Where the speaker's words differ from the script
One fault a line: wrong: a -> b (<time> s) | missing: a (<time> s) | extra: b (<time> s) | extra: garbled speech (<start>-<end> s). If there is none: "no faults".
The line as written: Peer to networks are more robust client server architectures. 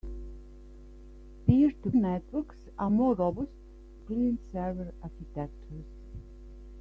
no faults